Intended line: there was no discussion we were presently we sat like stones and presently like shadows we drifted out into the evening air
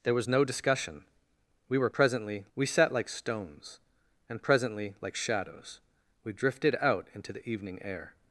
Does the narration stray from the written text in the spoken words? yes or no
no